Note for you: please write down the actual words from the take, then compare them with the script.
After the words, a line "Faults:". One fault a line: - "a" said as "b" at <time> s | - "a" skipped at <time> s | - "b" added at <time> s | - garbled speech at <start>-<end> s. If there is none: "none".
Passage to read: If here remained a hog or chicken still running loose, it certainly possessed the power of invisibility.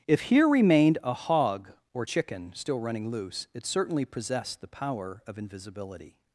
If here remained a hog or chicken still running loose, it certainly possessed the power of invisibility.
Faults:
none